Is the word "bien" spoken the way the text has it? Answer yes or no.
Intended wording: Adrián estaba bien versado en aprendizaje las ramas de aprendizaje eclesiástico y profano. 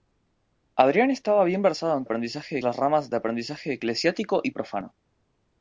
yes